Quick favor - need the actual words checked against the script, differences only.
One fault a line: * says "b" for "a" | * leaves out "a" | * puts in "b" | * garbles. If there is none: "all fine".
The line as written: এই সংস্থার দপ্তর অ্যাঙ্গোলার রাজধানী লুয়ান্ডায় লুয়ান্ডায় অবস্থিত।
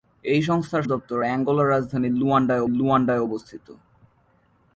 all fine